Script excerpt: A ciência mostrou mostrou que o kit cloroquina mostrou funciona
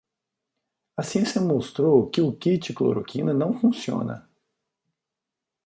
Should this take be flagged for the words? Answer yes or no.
yes